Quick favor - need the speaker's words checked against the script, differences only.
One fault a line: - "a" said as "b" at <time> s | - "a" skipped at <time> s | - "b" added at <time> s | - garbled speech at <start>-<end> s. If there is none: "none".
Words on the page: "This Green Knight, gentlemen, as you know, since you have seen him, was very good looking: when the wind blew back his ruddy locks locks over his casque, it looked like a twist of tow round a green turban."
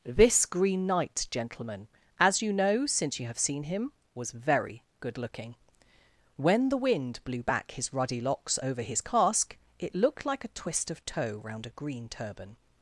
- "locks" skipped at 8.6 s